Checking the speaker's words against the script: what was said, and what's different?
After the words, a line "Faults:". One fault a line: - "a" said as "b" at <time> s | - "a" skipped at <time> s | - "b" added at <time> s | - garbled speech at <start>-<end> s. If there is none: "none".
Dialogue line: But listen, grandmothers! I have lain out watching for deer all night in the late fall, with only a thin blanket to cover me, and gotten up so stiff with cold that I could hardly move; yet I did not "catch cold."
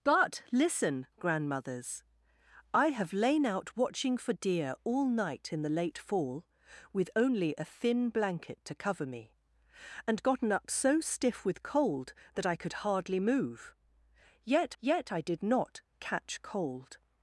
But listen, grandmothers! I have lain out watching for deer all night in the late fall, with only a thin blanket to cover me, and gotten up so stiff with cold that I could hardly move; yet yet I did not "catch cold."
Faults:
- "yet" added at 14.8 s